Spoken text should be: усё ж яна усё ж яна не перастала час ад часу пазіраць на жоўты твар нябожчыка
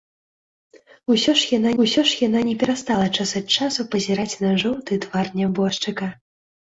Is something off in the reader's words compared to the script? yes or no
no